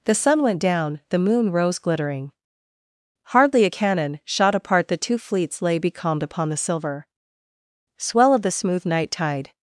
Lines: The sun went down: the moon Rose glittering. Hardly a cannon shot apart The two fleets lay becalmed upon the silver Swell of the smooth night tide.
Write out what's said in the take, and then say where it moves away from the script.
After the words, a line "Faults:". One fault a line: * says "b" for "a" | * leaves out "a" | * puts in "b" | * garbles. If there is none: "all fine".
The sun went down: the moon Rose glittering. Hardly a cannon shot apart The two fleets lay becalmed upon the silver Swell of the smooth night tide.
Faults:
all fine